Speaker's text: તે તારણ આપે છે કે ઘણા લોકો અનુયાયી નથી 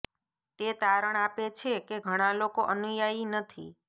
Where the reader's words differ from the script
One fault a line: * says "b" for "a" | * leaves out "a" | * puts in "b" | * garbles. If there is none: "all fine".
all fine